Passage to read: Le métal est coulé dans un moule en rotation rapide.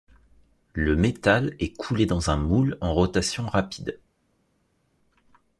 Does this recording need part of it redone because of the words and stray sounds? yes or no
no